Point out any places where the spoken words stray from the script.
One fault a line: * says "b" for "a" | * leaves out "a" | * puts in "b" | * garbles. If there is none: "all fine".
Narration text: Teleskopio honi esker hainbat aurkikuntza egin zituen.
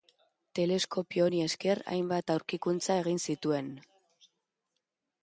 all fine